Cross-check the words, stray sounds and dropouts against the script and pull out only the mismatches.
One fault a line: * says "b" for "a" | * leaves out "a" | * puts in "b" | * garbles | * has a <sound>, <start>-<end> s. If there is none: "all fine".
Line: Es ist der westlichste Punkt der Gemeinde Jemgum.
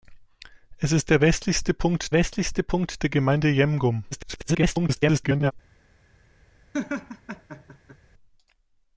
* puts in "westlichste Punkt"
* garbles
* has a laugh, 6.7-8.0 s